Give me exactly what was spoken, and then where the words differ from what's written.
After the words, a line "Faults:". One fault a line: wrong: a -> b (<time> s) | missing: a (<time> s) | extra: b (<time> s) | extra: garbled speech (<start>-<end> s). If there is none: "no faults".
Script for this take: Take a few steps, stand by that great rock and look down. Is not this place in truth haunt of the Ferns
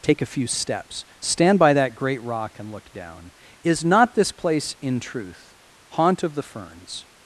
Take a few steps, stand by that great rock and look down. Is not this place in truth haunt of the Ferns
Faults:
no faults